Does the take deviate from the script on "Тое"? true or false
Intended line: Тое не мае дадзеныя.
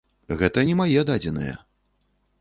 true